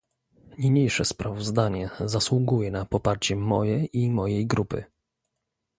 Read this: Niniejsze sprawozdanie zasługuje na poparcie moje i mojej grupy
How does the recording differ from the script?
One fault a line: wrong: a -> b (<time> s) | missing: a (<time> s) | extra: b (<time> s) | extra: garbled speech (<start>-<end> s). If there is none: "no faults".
no faults